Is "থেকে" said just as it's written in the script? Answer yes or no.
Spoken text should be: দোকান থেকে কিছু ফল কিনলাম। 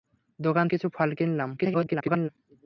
no